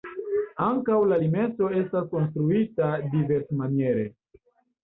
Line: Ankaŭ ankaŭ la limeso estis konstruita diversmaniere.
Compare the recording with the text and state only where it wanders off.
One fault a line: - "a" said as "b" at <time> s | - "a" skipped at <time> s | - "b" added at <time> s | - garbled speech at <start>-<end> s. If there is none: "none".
- "ankaŭ" skipped at 0.9 s
- "estis" said as "estas" at 1.8 s